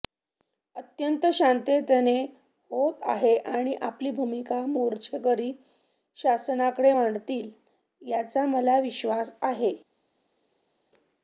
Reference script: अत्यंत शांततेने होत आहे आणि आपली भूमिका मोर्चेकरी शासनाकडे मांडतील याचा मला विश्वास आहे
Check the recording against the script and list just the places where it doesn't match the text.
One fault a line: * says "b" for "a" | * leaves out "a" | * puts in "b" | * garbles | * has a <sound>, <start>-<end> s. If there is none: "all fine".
all fine